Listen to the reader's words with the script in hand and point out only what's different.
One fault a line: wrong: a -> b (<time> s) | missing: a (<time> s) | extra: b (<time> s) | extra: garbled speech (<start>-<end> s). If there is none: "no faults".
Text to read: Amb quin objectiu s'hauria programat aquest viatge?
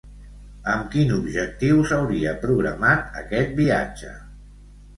no faults